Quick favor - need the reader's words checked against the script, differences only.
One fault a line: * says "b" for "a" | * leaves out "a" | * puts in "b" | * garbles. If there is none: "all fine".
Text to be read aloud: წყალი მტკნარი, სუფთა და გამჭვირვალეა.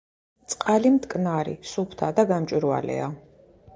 all fine